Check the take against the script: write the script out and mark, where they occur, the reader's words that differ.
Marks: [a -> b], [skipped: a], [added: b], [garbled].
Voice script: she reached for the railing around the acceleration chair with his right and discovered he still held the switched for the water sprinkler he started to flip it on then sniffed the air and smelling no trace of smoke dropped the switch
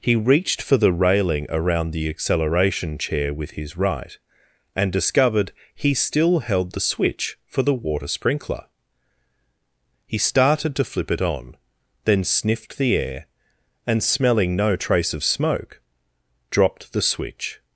[she -> he] reached for the railing around the acceleration chair with his right and discovered he still held the [switched -> switch] for the water sprinkler he started to flip it on then sniffed the air and smelling no trace of smoke dropped the switch